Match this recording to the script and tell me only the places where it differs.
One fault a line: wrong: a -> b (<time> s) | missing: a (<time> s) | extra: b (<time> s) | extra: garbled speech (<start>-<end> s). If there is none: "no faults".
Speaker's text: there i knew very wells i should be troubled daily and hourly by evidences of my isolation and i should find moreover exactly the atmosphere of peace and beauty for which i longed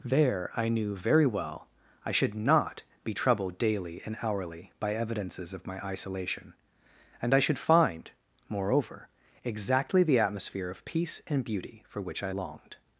wrong: wells -> well (1.2 s)
extra: not (2.3 s)